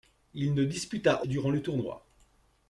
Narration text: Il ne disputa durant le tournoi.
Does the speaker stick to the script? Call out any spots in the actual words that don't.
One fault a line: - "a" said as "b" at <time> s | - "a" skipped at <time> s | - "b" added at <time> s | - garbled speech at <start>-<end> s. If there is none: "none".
none